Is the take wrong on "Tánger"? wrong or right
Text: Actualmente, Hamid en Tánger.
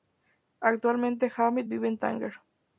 right